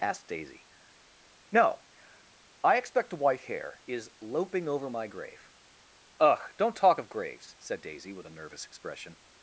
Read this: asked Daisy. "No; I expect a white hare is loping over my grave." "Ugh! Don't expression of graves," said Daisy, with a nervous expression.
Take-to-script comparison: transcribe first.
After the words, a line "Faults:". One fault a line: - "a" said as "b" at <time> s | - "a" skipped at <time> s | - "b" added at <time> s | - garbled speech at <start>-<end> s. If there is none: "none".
asked Daisy. "No; I expect a white hare is loping over my grave." "Ugh! Don't talk of graves," said Daisy, with a nervous expression.
Faults:
- "expression" said as "talk" at 6.8 s